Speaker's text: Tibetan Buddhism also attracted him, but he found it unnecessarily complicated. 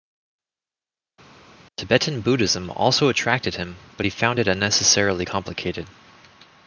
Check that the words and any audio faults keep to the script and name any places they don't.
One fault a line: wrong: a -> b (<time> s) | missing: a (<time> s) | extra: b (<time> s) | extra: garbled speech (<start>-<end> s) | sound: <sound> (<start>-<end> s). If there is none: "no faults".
no faults